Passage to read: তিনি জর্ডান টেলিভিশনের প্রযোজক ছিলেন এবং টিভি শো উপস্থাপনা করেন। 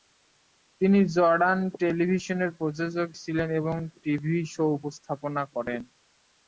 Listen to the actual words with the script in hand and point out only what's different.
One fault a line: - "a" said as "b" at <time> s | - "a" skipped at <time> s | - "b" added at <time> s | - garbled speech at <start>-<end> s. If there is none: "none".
none